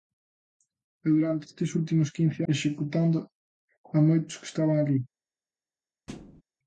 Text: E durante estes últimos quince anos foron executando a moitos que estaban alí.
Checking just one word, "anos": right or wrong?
wrong